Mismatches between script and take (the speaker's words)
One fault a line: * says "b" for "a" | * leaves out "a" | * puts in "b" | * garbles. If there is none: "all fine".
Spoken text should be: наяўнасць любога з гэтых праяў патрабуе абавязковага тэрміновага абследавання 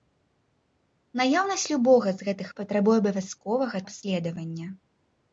* leaves out "праяў"
* leaves out "тэрміновага"